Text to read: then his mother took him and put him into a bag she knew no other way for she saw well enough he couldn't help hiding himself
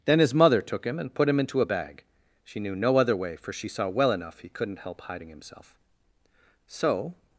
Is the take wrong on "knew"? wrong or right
right